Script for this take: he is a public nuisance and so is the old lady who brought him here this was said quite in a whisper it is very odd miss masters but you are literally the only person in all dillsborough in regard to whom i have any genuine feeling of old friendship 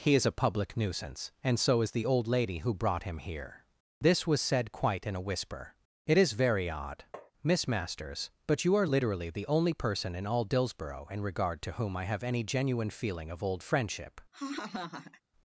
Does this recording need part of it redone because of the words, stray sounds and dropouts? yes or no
yes